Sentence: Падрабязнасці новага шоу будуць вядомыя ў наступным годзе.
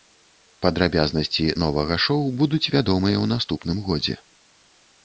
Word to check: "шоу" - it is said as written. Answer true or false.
true